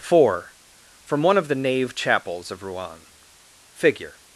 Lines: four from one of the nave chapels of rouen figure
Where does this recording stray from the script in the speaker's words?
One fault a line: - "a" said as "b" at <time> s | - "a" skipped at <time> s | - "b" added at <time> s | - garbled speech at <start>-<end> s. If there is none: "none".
none